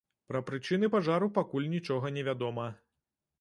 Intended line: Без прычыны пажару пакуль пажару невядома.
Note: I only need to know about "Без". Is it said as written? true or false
false